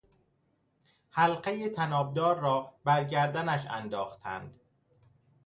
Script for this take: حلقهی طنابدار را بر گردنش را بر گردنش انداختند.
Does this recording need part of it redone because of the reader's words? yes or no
yes